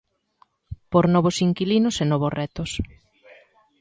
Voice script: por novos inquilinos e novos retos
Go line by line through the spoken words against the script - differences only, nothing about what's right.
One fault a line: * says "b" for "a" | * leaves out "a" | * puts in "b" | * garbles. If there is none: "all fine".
all fine